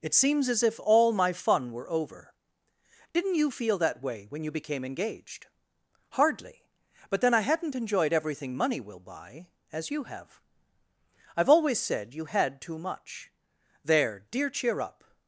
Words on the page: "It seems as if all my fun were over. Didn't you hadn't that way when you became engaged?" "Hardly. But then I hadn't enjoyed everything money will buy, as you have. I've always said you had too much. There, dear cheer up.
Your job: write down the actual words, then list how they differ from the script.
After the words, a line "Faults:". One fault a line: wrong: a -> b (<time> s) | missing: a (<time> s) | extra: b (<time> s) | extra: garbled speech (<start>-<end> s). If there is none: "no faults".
"It seems as if all my fun were over. Didn't you feel that way when you became engaged?" "Hardly. But then I hadn't enjoyed everything money will buy, as you have. I've always said you had too much. There, dear cheer up.
Faults:
wrong: hadn't -> feel (3.5 s)